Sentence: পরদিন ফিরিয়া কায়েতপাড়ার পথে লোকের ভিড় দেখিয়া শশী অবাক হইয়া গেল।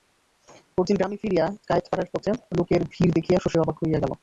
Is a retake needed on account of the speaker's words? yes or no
yes